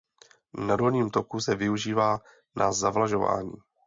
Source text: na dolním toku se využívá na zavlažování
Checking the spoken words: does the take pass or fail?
pass